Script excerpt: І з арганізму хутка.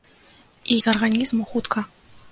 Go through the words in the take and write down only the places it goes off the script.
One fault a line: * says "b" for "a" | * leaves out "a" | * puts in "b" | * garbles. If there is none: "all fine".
all fine